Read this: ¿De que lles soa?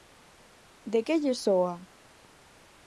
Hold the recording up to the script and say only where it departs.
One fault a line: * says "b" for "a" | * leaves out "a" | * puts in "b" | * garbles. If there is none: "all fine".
all fine